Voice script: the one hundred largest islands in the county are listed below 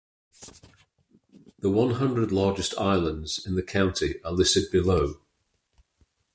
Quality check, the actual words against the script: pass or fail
pass